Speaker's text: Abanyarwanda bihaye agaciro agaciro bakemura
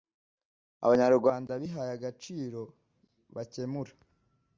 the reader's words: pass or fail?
fail